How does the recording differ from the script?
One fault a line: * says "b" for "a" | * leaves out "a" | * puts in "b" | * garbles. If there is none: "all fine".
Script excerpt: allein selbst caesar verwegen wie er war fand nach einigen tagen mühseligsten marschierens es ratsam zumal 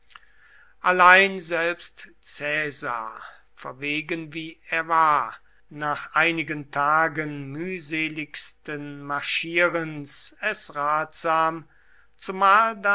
* leaves out "fand"